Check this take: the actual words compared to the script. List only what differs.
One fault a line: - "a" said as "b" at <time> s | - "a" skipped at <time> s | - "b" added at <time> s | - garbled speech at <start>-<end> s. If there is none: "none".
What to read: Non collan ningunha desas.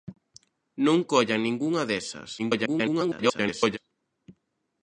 - garbled speech at 2.4-3.8 s